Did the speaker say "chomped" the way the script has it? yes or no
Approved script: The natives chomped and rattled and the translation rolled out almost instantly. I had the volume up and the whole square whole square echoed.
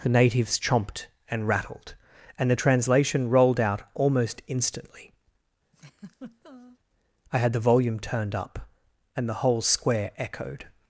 yes